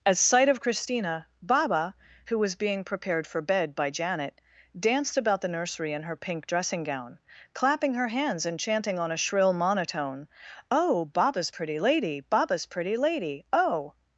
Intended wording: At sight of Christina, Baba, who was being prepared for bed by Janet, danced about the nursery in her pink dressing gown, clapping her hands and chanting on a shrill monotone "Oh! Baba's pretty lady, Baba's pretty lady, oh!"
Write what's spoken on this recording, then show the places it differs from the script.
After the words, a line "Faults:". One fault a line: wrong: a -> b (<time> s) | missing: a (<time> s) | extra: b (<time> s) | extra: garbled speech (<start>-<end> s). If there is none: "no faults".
At sight of Christina, Baba, who was being prepared for bed by Janet, danced about the nursery in her pink dressing gown, clapping her hands and chanting on a shrill monotone "Oh! Baba's pretty lady, Baba's pretty lady, oh!"
Faults:
no faults